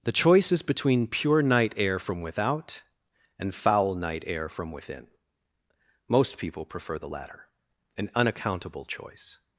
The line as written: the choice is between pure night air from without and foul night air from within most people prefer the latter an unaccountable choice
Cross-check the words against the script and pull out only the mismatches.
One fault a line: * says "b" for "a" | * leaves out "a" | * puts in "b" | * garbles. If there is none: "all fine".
all fine